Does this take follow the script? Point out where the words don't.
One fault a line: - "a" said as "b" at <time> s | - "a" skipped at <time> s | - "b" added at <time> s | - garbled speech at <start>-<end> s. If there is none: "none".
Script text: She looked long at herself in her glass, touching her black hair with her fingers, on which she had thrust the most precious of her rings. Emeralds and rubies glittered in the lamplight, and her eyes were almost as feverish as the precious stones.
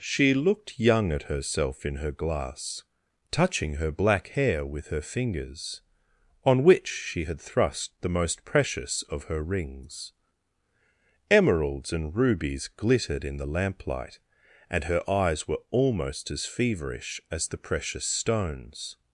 - "long" said as "young" at 0.8 s